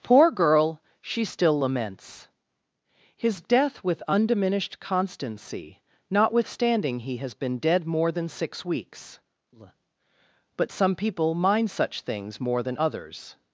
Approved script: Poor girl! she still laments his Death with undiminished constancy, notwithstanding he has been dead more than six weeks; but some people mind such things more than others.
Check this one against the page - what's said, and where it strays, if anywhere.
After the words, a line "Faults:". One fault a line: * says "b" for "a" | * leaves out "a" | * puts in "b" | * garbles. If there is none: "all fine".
Poor girl! she still laments his Death with undiminished constancy, notwithstanding he has been dead more than six weeks; but some people mind such things more than others.
Faults:
all fine